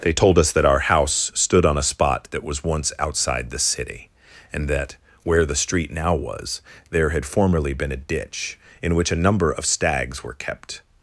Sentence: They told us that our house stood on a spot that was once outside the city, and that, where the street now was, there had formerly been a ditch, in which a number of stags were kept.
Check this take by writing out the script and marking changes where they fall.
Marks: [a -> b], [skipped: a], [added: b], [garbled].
They told us that our house stood on a spot that was once outside the city, and that, where the street now was, there had formerly been a ditch, in which a number of stags were kept.